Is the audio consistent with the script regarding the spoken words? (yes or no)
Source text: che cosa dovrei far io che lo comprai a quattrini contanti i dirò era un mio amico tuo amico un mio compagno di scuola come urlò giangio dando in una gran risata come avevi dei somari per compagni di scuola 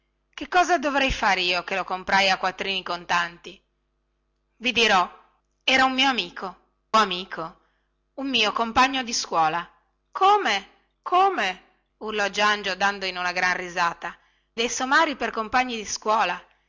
no